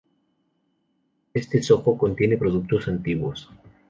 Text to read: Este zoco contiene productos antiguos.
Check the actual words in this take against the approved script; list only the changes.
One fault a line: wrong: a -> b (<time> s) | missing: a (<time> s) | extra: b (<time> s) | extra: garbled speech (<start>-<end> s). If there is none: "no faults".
no faults